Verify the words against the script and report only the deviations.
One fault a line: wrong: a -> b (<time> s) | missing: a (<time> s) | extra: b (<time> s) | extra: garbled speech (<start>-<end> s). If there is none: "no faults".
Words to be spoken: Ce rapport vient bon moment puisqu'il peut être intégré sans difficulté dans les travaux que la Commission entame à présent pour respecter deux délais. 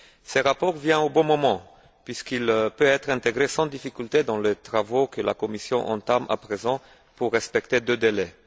extra: au (1.0 s)